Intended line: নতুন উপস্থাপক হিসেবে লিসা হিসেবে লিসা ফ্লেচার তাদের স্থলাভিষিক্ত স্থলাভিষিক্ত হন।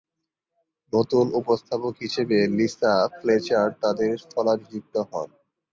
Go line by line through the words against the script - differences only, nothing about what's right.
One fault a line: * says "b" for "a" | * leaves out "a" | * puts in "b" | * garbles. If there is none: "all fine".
* leaves out "হিসেবে লিসা"
* leaves out "স্থলাভিষিক্ত"